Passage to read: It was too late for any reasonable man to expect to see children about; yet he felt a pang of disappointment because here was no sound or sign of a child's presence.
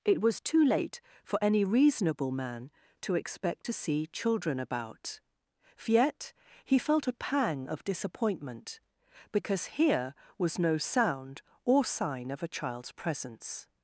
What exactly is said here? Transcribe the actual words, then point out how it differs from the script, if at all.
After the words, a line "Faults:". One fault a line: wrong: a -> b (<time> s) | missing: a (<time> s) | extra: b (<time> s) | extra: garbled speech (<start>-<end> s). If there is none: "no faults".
It was too late for any reasonable man to expect to see children about; yet he felt a pang of disappointment because here was no sound or sign of a child's presence.
Faults:
no faults